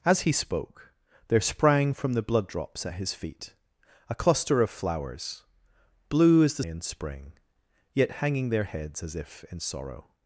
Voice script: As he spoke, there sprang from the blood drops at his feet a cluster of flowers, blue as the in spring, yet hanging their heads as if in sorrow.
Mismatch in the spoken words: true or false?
false